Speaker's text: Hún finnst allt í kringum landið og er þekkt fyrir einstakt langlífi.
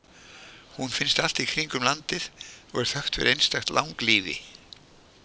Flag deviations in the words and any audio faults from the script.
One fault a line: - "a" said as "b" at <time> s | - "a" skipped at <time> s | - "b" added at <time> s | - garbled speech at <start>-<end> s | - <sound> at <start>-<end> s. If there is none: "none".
none